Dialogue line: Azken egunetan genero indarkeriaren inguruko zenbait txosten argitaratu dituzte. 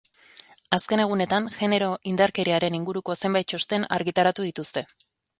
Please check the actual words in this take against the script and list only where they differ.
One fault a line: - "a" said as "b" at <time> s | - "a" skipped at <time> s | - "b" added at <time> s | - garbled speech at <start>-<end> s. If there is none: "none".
none